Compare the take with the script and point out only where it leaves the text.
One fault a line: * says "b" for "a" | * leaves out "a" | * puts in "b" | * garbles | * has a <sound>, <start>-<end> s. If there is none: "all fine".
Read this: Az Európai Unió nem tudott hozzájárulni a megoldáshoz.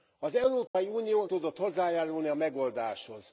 * has a dropout, 0.7-0.7 s
* leaves out "nem"